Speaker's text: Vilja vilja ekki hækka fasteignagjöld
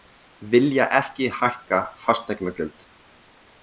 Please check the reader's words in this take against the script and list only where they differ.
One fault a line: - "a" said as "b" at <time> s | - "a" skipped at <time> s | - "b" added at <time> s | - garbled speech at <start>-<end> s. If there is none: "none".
- "vilja" skipped at 0.9 s